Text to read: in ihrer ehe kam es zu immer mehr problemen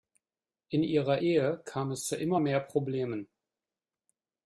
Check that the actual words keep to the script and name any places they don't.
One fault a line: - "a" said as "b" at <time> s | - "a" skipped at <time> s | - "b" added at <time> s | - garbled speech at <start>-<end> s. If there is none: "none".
none